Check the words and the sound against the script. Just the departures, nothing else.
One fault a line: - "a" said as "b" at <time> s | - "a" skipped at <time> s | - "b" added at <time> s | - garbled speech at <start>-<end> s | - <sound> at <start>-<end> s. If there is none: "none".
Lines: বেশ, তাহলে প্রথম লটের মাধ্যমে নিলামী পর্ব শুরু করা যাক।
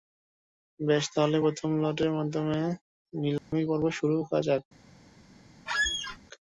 - dropout at 3.4-3.5 s
- squeak at 5.7-6.2 s